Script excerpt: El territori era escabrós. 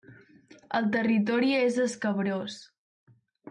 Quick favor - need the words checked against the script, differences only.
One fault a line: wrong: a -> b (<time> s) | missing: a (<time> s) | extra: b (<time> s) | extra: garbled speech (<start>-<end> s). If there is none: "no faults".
wrong: era -> és (1.6 s)